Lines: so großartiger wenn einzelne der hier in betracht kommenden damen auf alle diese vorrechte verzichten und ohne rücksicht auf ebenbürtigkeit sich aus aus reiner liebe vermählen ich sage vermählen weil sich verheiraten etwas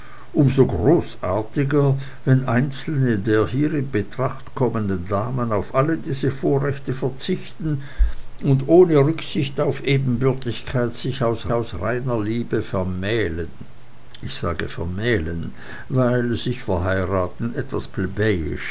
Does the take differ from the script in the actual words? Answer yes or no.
no